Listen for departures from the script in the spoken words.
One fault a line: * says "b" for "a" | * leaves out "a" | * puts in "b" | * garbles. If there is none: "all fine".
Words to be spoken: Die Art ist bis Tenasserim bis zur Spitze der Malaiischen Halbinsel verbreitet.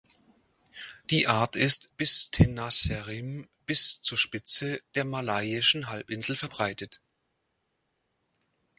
all fine